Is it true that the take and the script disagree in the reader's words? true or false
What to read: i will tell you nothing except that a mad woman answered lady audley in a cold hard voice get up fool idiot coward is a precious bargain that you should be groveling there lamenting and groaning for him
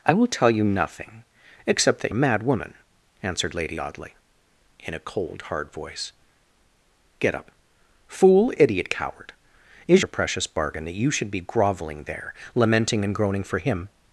false